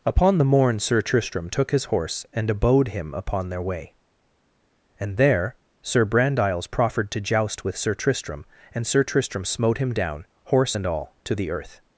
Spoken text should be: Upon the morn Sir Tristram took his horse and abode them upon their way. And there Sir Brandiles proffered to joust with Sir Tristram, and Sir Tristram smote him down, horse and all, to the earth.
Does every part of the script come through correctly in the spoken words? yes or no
no